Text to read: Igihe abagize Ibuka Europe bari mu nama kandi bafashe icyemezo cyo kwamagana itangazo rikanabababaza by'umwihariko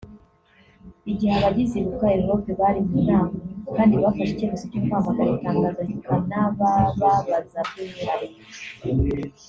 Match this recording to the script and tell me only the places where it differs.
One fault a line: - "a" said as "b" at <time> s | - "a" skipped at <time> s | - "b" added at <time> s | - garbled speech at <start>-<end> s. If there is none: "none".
none